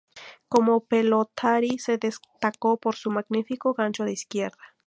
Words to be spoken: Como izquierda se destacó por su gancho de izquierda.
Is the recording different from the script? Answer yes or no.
yes